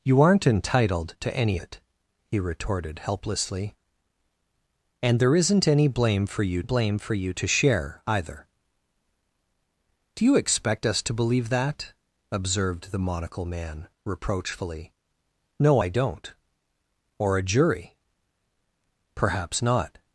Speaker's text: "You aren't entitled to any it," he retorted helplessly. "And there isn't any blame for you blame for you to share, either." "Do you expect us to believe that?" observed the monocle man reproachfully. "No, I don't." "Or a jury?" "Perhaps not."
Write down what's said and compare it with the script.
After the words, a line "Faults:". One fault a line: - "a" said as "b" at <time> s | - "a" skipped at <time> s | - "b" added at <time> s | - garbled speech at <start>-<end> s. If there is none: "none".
"You aren't entitled to any it," he retorted helplessly. "And there isn't any blame for you blame for you to share, either." "Do you expect us to believe that?" observed the monocle man reproachfully. "No, I don't." "Or a jury?" "Perhaps not."
Faults:
none